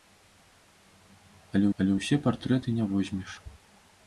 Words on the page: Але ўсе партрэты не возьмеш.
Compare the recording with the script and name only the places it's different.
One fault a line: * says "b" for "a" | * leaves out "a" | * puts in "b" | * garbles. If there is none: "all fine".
* puts in "але"